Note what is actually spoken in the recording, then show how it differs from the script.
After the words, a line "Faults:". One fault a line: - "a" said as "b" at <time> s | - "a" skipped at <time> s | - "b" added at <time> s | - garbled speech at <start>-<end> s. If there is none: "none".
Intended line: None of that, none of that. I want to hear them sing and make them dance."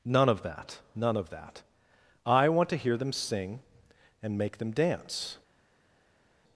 None of that, none of that. I want to hear them sing and make them dance."
Faults:
none